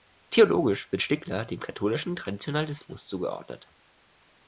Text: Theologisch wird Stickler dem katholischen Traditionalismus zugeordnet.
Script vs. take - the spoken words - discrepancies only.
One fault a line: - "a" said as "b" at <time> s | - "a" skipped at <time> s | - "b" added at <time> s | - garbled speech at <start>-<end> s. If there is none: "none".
none